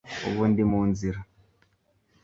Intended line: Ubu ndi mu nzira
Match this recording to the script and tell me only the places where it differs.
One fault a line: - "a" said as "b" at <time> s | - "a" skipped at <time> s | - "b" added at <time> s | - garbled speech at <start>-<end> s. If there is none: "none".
none